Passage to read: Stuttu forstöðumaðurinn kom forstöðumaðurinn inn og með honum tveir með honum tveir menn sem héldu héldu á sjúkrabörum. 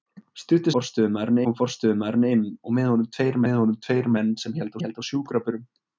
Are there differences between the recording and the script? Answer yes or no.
no